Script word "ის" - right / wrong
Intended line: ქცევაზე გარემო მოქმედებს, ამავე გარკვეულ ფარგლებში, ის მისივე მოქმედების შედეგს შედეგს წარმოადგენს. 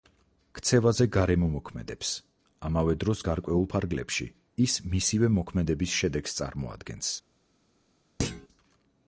right